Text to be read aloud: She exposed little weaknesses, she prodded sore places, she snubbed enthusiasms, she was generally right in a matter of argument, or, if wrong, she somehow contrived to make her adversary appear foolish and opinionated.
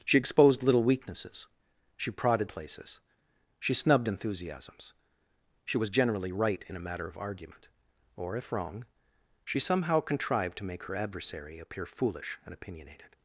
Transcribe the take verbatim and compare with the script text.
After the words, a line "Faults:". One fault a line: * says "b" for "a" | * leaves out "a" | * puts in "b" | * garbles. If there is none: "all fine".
She exposed little weaknesses, she prodded places, she snubbed enthusiasms, she was generally right in a matter of argument, or, if wrong, she somehow contrived to make her adversary appear foolish and opinionated.
Faults:
* leaves out "sore"